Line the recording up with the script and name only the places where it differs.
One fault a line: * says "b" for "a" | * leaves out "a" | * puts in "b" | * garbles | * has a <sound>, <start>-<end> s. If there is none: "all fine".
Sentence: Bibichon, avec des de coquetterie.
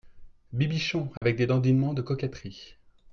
* has a dropout, 1.2-1.2 s
* puts in "dandinements"